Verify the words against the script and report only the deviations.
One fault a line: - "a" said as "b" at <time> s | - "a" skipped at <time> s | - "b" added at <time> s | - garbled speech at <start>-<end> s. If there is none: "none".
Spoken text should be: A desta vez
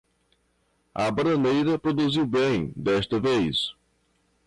- "bananeira produziu bem" added at 1.1 s